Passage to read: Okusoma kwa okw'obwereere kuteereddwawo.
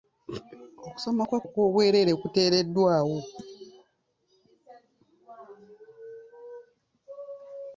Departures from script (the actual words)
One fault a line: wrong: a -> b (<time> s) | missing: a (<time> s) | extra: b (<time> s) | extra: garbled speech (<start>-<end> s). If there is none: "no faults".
no faults